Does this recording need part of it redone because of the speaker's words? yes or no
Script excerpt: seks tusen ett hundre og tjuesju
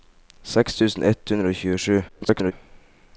yes